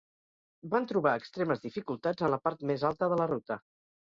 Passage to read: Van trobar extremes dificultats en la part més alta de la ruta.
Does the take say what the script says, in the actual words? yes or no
yes